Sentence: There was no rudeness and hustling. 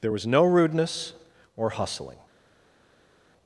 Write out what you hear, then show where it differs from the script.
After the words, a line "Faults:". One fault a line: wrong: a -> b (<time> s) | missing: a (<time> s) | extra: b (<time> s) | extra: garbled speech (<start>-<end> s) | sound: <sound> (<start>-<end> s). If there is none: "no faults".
There was no rudeness or hustling.
Faults:
wrong: and -> or (1.6 s)